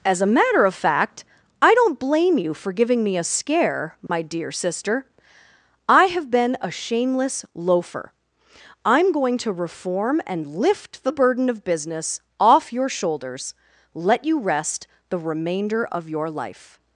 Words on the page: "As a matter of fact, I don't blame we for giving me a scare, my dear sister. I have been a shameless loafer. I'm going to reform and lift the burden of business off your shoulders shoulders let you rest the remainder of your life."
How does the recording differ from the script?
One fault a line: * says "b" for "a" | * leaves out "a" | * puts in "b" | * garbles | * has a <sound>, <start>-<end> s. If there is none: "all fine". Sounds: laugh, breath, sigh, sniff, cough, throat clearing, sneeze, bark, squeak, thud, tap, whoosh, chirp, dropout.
* says "you" for "we"
* has a dropout, 4.1-4.1 s
* leaves out "shoulders"